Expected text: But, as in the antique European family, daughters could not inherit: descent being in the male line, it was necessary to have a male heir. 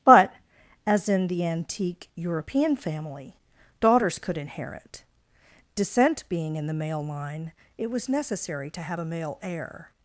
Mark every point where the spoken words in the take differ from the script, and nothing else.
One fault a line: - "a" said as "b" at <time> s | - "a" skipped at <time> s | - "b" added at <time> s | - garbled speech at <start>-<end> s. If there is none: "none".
- "not" skipped at 4.4 s